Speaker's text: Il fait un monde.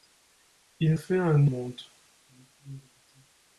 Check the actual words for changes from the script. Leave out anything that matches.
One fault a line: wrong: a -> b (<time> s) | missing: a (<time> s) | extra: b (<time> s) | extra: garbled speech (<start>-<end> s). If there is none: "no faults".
no faults